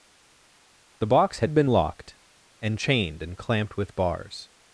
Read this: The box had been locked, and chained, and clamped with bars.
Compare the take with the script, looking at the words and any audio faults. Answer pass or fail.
pass